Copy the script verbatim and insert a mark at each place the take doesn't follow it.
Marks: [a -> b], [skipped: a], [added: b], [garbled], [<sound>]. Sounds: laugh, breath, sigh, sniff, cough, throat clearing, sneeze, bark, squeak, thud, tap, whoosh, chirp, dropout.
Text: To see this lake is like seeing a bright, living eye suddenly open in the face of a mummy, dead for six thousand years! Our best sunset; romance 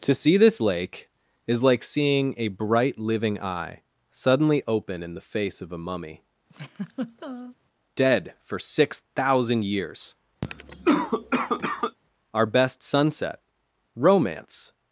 To see this lake is like seeing a bright, living eye suddenly open in the face of a mummy, [laugh] dead for six thousand years! [cough] Our best sunset; romance